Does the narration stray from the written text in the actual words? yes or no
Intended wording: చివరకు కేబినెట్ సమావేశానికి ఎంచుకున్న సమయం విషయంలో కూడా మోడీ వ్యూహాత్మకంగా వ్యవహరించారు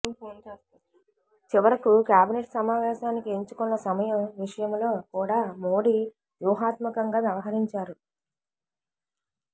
no